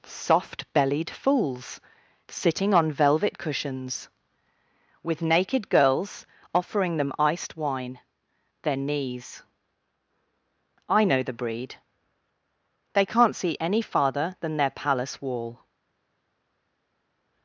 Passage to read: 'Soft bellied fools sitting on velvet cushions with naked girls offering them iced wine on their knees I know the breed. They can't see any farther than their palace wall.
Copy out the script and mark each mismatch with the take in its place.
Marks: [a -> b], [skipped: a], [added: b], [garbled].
'Soft bellied fools sitting on velvet cushions with naked girls offering them iced wine [skipped: on] their knees I know the breed. They can't see any farther than their palace wall.